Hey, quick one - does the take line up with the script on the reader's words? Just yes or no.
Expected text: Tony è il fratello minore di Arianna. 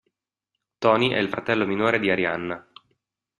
yes